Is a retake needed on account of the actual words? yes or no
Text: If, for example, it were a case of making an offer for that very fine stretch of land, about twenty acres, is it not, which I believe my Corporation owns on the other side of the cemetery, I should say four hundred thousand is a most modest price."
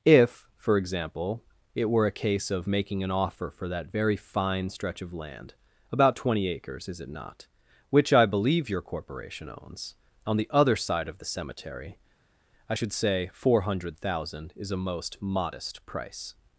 yes